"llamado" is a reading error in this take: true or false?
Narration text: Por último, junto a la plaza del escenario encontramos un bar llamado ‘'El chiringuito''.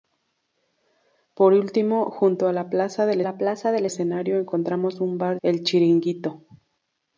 true